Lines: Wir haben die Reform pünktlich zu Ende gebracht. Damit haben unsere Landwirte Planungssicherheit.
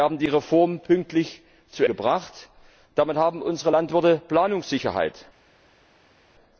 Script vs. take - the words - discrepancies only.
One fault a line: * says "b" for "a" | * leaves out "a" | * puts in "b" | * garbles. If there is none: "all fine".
* leaves out "Ende"